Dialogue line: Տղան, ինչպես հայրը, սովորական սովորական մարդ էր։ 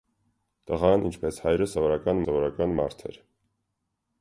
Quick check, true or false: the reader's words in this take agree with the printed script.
true